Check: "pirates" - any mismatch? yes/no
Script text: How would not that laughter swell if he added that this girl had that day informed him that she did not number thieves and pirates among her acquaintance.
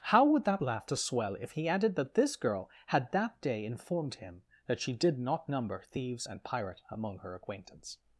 yes